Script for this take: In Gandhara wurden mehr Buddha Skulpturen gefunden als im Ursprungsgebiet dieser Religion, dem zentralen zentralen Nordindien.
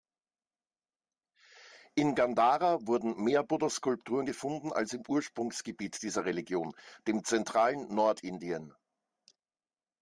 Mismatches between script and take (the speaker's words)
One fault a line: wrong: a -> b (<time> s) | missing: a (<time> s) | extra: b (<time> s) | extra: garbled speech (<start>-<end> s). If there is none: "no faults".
missing: zentralen (7.9 s)